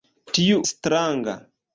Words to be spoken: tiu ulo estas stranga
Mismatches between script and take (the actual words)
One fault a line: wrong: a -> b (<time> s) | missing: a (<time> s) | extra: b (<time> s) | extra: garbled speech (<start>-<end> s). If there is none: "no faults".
missing: ulo estas (0.6 s)